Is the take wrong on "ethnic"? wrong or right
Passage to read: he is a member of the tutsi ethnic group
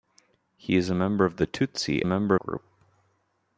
wrong